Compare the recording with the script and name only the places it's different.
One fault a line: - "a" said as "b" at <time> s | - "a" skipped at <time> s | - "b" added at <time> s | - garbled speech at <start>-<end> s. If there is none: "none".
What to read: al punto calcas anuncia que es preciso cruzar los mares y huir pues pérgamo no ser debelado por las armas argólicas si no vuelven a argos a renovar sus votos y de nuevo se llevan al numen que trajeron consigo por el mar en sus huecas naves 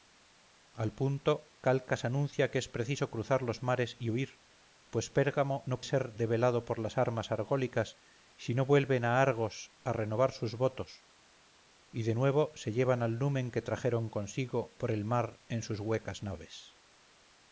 none